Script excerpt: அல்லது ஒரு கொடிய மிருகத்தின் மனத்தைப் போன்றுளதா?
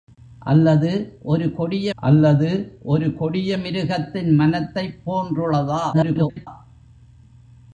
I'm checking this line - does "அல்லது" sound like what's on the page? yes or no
yes